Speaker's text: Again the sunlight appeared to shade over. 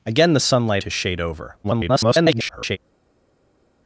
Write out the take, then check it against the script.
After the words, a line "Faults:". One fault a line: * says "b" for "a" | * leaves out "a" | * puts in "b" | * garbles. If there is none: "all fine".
Again the sunlight to shade over. [garbled]
Faults:
* leaves out "appeared"
* garbles